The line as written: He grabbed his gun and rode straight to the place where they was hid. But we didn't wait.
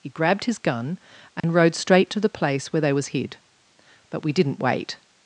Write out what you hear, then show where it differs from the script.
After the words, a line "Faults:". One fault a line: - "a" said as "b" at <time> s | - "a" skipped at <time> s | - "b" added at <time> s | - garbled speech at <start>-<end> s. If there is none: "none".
He grabbed his gun and rode straight to the place where they was hid. But we didn't wait.
Faults:
none